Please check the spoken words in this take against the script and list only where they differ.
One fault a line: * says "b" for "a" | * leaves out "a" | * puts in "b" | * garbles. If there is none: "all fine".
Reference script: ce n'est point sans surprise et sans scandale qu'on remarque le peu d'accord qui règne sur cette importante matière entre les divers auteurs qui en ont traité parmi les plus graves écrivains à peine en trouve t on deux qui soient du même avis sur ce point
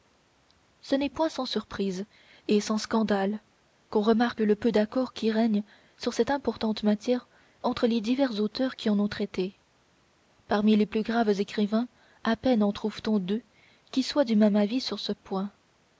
all fine